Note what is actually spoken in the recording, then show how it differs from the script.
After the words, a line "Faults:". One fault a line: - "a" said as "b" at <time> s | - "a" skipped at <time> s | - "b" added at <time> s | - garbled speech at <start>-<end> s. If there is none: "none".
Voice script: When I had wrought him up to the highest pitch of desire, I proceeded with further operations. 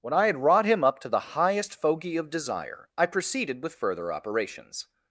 When I had wrought him up to the highest fogey of desire, I proceeded with further operations.
Faults:
- "pitch" said as "fogey" at 1.8 s